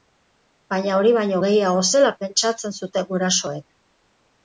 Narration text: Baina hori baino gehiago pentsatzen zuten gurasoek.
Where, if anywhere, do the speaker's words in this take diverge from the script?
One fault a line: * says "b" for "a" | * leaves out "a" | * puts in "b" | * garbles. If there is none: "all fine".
* puts in "zela"